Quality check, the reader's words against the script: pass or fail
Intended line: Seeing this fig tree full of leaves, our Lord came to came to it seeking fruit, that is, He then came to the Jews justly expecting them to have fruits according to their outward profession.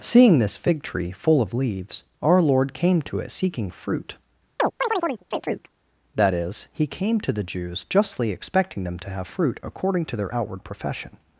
fail